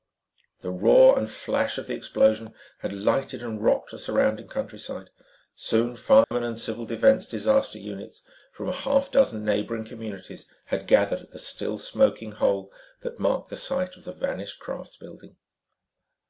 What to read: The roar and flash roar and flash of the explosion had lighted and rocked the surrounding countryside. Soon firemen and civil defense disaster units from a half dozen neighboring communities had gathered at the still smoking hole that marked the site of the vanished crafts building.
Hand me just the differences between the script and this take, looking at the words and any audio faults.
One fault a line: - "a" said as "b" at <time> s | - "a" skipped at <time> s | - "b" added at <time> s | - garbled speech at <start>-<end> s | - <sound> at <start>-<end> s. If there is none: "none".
- "roar and flash" skipped at 1.8 s
- dropout at 6.2-6.3 s